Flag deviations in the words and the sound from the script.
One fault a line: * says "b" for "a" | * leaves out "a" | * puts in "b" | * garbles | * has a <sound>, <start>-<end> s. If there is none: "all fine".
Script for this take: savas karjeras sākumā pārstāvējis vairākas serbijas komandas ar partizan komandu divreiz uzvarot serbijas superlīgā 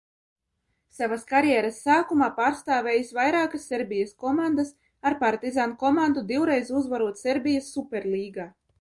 all fine